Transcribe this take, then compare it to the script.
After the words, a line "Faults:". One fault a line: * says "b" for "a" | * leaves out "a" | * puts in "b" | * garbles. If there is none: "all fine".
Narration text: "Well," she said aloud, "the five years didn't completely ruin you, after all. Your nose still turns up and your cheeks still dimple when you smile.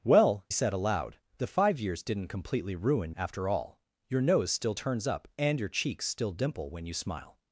"Well," said aloud, "the five years didn't completely ruin after all. Your nose still turns up and your cheeks still dimple when you smile.
Faults:
* leaves out "she"
* leaves out "you"